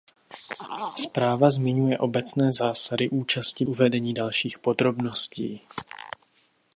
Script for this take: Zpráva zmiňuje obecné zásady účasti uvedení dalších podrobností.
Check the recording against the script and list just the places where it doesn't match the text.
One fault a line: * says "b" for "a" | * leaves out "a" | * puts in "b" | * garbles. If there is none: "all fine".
all fine